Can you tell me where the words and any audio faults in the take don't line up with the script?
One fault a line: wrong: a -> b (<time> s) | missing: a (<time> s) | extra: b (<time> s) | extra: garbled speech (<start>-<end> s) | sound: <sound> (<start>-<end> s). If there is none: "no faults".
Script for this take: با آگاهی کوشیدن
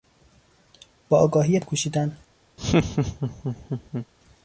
sound: laugh (2.6-4.1 s)